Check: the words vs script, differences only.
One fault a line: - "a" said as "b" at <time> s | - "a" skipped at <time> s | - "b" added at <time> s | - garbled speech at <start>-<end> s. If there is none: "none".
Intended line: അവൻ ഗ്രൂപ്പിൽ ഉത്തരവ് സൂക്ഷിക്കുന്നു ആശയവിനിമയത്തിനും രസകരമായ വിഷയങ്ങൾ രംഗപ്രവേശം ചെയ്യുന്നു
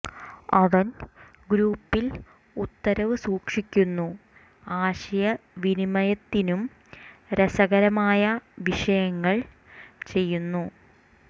- "രംഗപ്രവേശം" skipped at 9.4 s